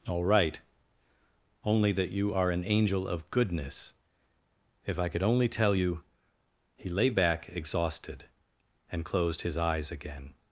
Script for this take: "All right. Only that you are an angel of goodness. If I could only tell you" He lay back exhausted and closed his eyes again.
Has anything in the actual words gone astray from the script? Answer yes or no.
no